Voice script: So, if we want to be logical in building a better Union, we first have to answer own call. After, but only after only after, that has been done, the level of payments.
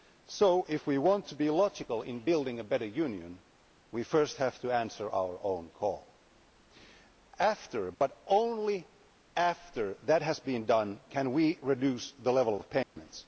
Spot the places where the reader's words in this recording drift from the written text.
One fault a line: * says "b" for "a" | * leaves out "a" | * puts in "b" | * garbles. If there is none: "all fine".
* puts in "our"
* leaves out "only after"
* puts in "can we reduce"